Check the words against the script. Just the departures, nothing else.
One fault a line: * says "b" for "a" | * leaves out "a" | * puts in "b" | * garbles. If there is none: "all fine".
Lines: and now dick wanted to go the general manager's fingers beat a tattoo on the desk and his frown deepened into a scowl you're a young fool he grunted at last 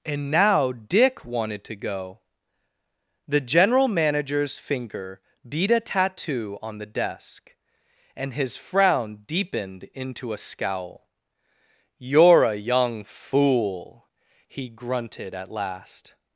* says "finger" for "fingers"